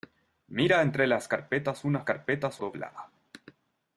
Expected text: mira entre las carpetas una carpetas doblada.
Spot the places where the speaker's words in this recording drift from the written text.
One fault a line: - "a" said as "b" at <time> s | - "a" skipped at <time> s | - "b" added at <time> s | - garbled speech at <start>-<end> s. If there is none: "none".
none